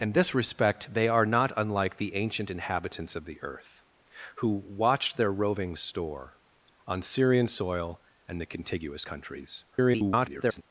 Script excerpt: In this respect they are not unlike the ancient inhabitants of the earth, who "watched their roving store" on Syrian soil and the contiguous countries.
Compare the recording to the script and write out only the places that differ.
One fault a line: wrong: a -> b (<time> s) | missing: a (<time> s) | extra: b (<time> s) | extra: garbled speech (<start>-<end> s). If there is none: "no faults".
extra: garbled speech (9.7-10.6 s)